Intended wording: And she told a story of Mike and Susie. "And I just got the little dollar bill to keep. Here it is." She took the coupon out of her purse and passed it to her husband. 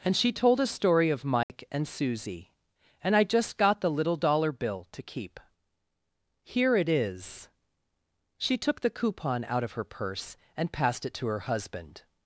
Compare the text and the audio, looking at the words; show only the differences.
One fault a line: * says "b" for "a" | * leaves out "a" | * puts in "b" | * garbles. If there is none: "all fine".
all fine